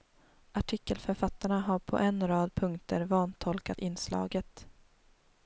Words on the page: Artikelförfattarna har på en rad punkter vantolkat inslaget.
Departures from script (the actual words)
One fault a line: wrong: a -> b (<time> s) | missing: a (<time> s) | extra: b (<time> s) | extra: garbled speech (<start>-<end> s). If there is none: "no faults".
no faults